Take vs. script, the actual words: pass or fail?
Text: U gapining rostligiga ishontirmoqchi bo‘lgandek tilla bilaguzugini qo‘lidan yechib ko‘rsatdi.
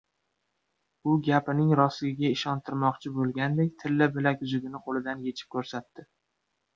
pass